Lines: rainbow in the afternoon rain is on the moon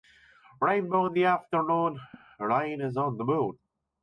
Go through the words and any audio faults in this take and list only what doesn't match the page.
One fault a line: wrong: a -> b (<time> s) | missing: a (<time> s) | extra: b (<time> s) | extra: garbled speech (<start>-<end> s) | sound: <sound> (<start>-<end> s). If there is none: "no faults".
sound: laugh (2.1-2.3 s)